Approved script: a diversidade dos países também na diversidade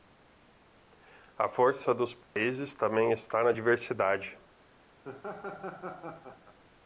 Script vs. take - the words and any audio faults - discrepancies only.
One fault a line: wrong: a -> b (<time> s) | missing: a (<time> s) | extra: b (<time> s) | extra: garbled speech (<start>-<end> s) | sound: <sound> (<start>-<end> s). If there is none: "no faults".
wrong: diversidade -> força (1.5 s)
sound: dropout (2.2-2.4 s)
extra: está (3.1 s)
sound: laugh (5.0-6.6 s)